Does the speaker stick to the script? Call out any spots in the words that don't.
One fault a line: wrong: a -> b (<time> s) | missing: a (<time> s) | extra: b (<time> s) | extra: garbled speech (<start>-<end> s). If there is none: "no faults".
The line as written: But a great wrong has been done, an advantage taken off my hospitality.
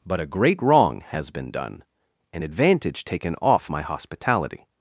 no faults